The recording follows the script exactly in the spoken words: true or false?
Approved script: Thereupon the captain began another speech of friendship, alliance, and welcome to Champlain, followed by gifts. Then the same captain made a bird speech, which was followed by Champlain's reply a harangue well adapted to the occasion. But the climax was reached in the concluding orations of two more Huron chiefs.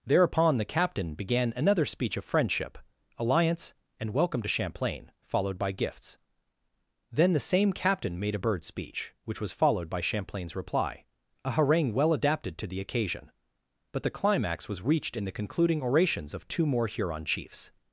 true